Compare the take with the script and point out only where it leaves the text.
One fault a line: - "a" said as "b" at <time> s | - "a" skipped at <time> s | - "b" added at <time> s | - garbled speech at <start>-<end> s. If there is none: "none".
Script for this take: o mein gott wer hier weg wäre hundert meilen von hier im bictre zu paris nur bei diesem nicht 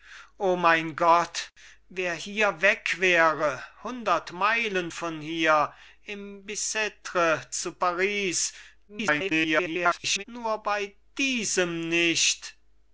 - garbled speech at 8.9-10.2 s